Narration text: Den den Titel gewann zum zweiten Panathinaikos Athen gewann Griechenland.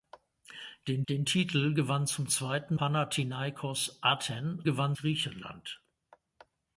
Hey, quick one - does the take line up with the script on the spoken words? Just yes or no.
yes